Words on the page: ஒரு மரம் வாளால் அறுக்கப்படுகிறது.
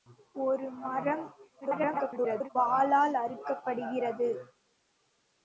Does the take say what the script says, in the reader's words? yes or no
no